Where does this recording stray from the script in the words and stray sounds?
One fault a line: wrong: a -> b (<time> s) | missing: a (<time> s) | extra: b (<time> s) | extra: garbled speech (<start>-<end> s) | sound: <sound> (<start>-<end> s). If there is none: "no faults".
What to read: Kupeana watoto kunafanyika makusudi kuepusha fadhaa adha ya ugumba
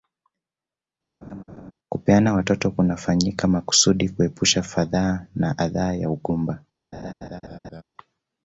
sound: laugh (1.2-1.7 s)
extra: na (5.3 s)
sound: laugh (6.9-7.8 s)